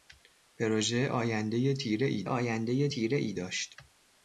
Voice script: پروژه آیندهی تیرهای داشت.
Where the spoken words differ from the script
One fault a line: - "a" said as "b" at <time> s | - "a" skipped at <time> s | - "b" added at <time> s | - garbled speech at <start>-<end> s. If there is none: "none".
- "آیندهی تیرهای" added at 2.3 s